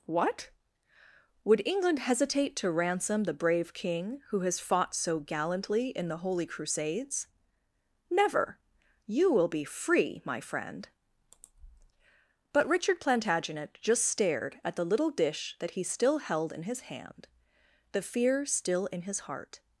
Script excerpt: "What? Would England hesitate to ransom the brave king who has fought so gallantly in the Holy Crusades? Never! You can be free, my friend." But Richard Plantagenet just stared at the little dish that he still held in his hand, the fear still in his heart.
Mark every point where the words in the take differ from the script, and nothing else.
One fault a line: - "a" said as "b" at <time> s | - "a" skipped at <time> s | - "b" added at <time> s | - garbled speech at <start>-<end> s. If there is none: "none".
- "can" said as "will" at 9.3 s